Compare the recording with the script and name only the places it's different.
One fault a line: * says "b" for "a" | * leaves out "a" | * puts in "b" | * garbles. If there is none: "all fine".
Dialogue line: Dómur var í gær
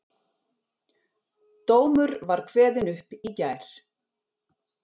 * puts in "kveðinn upp"